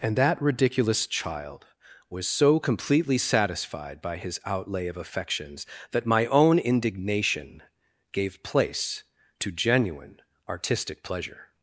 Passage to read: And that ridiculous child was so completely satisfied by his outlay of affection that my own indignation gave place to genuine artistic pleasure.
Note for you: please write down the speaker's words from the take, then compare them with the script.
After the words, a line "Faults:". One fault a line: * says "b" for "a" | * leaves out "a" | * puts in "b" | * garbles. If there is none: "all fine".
And that ridiculous child was so completely satisfied by his outlay of affections that my own indignation gave place to genuine artistic pleasure.
Faults:
* says "affections" for "affection"